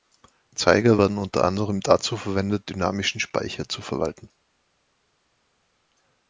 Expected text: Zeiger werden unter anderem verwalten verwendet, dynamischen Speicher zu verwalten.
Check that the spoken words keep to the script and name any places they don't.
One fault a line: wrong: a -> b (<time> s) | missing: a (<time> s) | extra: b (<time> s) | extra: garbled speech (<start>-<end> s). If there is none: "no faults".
wrong: verwalten -> dazu (1.8 s)